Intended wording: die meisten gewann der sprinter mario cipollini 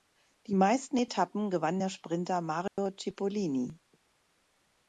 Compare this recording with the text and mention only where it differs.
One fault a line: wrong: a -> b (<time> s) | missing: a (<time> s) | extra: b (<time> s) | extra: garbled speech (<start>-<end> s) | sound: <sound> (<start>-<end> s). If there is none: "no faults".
extra: etappen (0.9 s)
sound: dropout (2.7-2.8 s)